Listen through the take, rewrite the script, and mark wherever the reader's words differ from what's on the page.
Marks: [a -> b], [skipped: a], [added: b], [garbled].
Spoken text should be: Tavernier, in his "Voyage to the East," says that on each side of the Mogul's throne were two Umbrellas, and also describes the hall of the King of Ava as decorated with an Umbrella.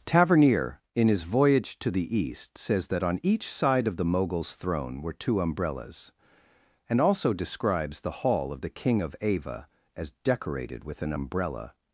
Tavernier, in his "Voyage to the East," says that on each side of the Mogul's throne were two Umbrellas, and also describes the hall of the King of Ava as decorated with an Umbrella.